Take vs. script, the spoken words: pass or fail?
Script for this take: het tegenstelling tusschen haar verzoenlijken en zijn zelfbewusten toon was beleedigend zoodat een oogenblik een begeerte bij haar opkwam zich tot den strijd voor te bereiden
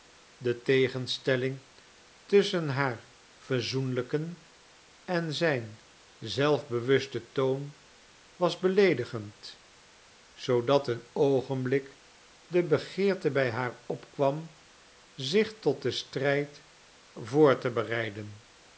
fail